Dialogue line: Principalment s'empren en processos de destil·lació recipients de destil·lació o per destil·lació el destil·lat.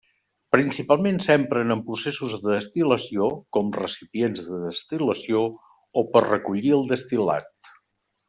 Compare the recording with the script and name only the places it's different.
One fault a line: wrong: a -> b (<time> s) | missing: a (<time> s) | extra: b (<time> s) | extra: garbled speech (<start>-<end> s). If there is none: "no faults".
extra: com (3.6 s)
wrong: destil·lació -> recollir (6.3 s)